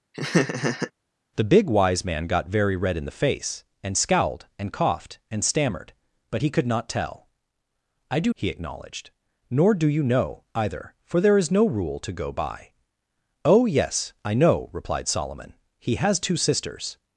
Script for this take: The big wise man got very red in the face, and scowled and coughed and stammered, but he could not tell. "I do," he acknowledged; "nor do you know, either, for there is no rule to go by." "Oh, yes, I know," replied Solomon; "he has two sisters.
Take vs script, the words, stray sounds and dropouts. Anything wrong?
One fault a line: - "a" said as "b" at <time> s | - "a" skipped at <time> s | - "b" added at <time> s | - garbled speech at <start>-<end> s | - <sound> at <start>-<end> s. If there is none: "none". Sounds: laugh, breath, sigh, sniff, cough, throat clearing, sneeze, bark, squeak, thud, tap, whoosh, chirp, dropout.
- laugh at 0.1-0.9 s